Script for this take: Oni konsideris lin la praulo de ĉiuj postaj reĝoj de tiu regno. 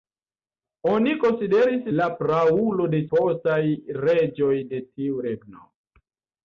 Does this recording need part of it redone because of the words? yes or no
yes